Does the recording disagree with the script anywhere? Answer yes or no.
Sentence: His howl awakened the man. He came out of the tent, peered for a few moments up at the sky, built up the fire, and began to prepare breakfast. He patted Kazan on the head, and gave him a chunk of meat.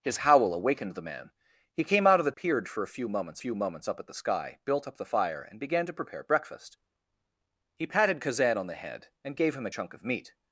yes